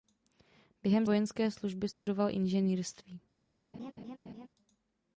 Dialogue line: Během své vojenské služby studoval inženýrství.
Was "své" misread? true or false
true